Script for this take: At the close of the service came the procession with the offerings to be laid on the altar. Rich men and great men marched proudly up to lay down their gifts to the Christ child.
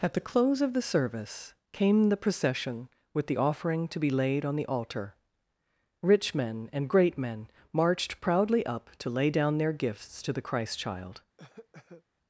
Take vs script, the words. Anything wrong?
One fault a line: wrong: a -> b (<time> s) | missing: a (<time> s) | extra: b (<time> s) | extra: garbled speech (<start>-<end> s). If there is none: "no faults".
wrong: offerings -> offering (3.3 s)